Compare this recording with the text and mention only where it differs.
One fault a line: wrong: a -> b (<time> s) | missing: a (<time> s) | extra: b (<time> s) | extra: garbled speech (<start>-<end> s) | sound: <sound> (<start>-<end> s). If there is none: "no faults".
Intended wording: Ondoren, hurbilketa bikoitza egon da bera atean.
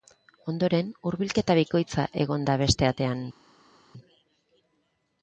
wrong: bera -> beste (2.6 s)